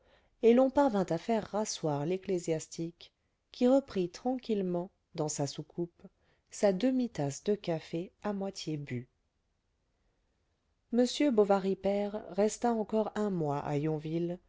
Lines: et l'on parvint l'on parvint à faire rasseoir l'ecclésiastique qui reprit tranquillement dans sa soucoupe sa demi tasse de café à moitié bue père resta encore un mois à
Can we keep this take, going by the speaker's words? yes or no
no